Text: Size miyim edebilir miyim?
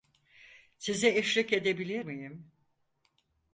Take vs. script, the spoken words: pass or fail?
fail